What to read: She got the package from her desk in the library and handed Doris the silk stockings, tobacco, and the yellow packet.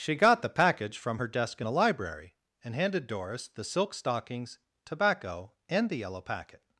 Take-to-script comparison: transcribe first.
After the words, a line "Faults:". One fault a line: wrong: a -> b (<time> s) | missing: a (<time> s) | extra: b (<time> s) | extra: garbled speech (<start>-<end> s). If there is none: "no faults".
She got the package from her desk in a library and handed Doris the silk stockings, tobacco, and the yellow packet.
Faults:
wrong: the -> a (1.6 s)